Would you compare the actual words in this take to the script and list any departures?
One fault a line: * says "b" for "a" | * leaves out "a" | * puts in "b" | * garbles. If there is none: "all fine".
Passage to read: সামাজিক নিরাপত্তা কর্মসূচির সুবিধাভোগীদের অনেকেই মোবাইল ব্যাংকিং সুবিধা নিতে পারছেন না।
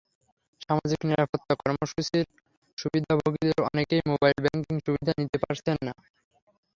all fine